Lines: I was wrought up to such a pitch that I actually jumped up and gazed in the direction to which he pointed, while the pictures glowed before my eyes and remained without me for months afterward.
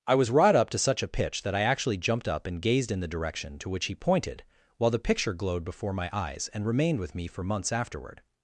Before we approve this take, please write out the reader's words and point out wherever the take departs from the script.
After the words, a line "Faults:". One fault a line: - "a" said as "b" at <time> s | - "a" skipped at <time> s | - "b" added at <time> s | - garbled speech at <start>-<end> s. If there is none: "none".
I was wrought up to such a pitch that I actually jumped up and gazed in the direction to which he pointed, while the picture glowed before my eyes and remained with me for months afterward.
Faults:
- "pictures" said as "picture" at 5.0 s
- "without" said as "with" at 7.0 s